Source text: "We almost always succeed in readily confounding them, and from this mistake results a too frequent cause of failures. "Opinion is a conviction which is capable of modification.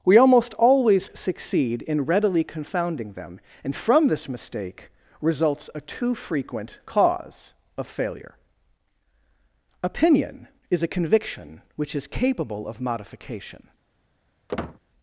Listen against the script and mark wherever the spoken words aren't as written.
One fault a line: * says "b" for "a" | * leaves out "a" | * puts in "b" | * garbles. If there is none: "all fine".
* says "failure" for "failures"